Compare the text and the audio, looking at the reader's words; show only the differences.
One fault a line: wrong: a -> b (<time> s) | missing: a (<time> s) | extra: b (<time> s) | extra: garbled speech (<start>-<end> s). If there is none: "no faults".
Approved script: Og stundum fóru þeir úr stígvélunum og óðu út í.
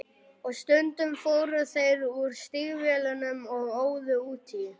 no faults